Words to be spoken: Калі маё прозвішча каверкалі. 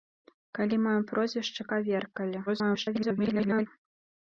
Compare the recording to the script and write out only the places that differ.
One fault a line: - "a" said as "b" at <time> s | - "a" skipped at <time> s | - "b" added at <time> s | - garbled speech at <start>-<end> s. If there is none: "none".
- garbled speech at 2.5-3.7 s